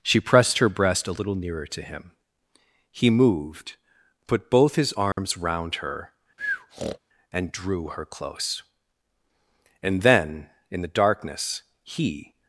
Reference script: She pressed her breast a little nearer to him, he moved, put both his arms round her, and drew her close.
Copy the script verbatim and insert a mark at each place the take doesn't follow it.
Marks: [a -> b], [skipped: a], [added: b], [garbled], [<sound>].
She pressed her breast a little nearer to him, he moved, put both his arms [dropout] round her, [breath] and drew her close. [added: And then in the darkness he]